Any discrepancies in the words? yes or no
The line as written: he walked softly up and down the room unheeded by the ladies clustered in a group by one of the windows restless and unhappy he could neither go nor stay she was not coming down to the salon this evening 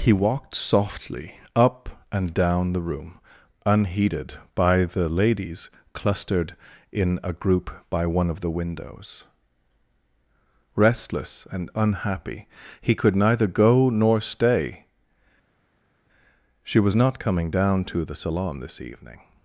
no